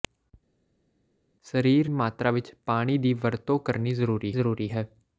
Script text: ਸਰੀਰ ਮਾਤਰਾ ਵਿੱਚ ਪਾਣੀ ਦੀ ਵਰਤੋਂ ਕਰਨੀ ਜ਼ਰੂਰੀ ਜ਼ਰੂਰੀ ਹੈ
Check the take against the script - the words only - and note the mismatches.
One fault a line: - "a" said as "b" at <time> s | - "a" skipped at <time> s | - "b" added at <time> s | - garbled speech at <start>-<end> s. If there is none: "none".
none